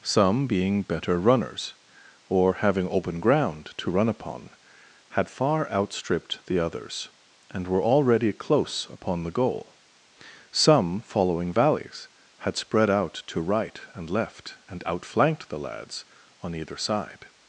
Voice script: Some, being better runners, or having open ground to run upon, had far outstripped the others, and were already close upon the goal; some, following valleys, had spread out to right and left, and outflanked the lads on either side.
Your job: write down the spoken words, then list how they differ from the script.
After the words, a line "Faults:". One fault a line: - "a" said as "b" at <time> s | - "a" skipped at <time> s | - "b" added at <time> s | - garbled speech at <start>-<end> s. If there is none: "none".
Some, being better runners, or having open ground to run upon, had far outstripped the others, and were already close upon the goal; some, following valleys, had spread out to right and left, and outflanked the lads on either side.
Faults:
none